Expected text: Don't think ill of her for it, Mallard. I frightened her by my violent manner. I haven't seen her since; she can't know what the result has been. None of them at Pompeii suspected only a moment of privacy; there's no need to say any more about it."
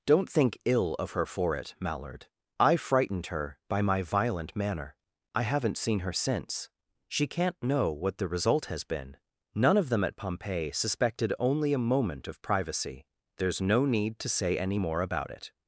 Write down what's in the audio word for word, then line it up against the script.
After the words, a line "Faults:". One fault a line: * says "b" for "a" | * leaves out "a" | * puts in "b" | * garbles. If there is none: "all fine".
Don't think ill of her for it, Mallard. I frightened her by my violent manner. I haven't seen her since; she can't know what the result has been. None of them at Pompeii suspected only a moment of privacy; there's no need to say any more about it."
Faults:
all fine